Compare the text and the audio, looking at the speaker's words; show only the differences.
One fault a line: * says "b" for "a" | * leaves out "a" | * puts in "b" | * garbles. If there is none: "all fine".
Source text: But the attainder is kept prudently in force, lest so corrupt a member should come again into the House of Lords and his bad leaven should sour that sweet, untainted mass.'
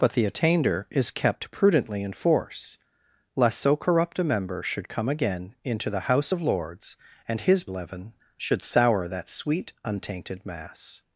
* leaves out "bad"